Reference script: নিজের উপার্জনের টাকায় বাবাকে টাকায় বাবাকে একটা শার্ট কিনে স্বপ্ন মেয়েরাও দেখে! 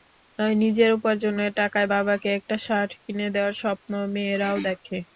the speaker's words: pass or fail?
fail